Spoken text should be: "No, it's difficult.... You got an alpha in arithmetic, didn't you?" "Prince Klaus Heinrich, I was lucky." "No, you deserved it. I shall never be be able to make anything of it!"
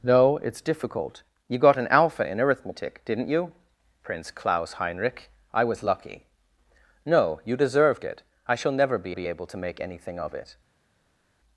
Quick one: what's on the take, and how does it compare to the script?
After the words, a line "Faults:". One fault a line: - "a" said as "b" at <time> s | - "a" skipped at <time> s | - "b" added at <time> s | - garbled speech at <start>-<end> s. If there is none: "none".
"No, it's difficult.... You got an alpha in arithmetic, didn't you?" "Prince Klaus Heinrich, I was lucky." "No, you deserved it. I shall never be be able to make anything of it!"
Faults:
none